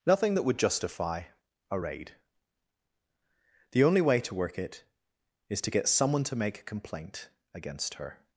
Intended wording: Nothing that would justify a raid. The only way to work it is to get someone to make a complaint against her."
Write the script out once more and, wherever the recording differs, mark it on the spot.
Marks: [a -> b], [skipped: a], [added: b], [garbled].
Nothing that would justify a raid. The only way to work it is to get someone to make a complaint against her."